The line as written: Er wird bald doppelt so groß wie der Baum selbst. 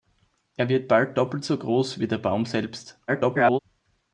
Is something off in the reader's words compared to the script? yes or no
yes